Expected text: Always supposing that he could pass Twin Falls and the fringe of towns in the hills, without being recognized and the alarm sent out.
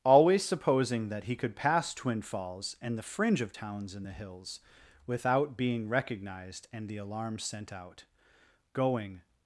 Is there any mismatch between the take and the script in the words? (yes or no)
yes